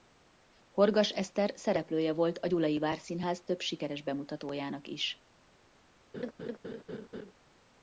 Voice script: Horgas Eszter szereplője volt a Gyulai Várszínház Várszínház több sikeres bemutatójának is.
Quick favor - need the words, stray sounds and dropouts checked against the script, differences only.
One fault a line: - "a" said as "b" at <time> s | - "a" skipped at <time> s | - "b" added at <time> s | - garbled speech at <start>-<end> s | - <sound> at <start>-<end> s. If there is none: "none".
- "Várszínház" skipped at 3.4 s
- laugh at 6.1-7.3 s